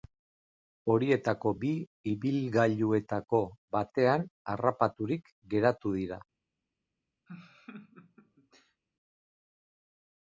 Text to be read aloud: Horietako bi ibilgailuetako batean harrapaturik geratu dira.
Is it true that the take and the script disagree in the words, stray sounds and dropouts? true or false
true